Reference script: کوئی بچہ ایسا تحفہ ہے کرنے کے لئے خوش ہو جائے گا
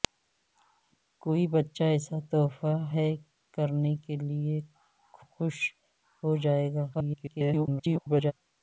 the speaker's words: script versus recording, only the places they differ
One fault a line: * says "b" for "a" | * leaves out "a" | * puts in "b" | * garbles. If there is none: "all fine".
* garbles